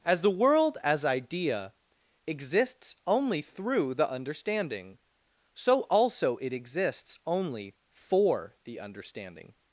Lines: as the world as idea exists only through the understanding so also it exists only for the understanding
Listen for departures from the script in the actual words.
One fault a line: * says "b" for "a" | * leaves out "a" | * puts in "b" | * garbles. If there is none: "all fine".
all fine